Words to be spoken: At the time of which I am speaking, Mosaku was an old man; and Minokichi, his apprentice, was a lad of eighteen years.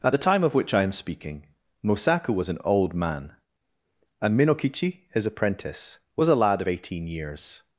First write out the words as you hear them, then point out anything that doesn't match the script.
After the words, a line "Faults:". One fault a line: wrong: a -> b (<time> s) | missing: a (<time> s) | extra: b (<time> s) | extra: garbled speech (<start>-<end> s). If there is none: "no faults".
At the time of which I am speaking, Mosaku was an old man; and Minokichi, his apprentice, was a lad of eighteen years.
Faults:
no faults